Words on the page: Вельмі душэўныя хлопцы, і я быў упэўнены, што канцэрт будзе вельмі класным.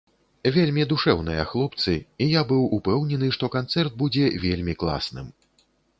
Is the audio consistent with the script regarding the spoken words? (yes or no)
yes